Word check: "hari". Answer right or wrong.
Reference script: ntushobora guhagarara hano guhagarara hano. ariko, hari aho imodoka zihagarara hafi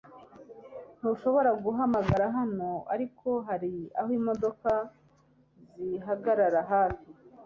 right